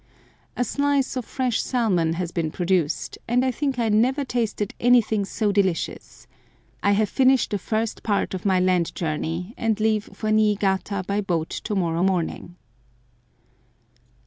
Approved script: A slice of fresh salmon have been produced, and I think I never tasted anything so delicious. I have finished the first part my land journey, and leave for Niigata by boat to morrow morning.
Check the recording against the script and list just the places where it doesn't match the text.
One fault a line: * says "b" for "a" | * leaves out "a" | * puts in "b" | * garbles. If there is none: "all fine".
* says "has" for "have"
* puts in "of"